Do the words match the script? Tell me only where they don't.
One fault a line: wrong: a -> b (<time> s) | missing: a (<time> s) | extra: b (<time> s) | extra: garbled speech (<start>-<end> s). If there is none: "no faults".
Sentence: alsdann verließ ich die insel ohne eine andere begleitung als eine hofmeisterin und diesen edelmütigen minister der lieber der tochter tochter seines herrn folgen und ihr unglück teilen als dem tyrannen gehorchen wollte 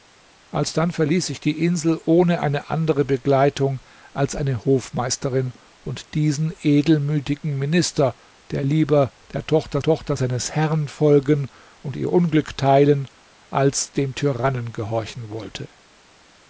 no faults